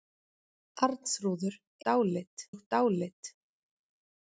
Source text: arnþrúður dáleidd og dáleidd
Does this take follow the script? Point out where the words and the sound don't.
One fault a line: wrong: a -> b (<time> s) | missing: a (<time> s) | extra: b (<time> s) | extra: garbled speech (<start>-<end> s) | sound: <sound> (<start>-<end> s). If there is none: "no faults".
no faults